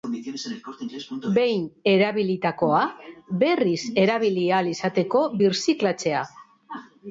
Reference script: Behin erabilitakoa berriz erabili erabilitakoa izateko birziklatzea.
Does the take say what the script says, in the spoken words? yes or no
no